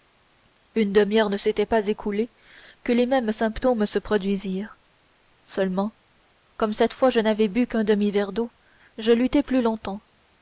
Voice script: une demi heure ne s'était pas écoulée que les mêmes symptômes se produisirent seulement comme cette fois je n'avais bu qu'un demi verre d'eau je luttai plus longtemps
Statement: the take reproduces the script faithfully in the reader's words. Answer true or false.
true